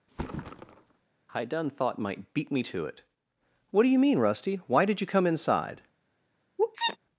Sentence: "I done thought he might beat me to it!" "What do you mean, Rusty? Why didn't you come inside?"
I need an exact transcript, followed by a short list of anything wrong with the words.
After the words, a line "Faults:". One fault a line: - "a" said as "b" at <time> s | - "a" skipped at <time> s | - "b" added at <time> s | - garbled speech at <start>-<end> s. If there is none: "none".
"I done thought might beat me to it!" "What do you mean, Rusty? Why did you come inside?"
Faults:
- "he" skipped at 2.0 s
- "didn't" said as "did" at 4.8 s